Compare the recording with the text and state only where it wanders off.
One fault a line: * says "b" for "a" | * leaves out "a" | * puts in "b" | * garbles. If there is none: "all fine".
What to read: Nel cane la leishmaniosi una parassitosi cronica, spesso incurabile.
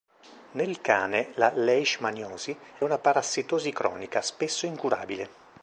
all fine